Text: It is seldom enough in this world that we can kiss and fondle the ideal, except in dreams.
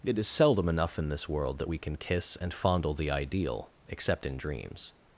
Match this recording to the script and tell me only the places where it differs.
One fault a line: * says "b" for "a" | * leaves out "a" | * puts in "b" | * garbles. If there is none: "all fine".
all fine